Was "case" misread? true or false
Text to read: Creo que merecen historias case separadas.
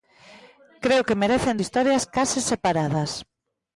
false